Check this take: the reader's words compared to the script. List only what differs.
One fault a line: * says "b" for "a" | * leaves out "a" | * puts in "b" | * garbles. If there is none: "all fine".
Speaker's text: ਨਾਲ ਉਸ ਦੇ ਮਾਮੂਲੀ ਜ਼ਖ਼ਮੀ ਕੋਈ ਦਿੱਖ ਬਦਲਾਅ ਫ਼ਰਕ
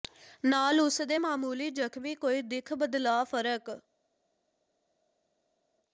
all fine